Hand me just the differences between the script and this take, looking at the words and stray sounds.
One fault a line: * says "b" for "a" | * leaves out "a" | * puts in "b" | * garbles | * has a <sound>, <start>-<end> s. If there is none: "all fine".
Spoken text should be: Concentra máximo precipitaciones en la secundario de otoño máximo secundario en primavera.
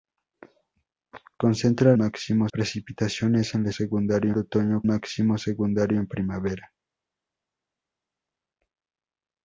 all fine